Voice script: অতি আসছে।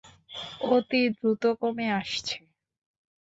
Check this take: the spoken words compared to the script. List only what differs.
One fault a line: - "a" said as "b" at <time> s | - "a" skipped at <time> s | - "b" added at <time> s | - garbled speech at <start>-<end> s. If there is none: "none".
- "দ্রুত কমে" added at 1.1 s